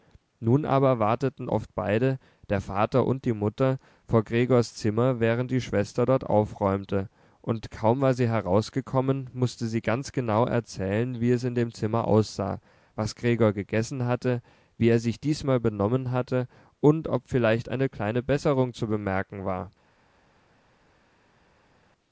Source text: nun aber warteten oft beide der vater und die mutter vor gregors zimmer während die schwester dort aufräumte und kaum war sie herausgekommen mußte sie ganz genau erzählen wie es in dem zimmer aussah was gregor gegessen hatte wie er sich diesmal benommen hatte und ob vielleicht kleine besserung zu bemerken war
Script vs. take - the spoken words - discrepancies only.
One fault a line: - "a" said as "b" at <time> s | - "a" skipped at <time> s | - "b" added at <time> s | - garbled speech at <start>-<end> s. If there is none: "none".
- "eine" added at 17.7 s